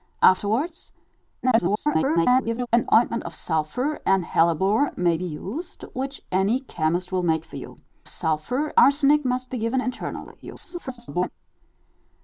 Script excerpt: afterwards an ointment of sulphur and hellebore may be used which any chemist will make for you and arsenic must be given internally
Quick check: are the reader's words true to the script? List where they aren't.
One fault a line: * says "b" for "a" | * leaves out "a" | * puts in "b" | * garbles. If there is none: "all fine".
* garbles
* says "sulphur" for "and"
* garbles